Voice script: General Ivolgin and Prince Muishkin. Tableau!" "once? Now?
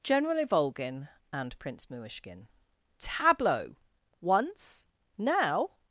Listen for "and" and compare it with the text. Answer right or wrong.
right